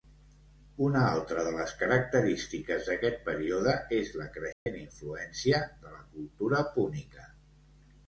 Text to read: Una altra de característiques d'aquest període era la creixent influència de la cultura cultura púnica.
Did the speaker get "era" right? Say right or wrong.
wrong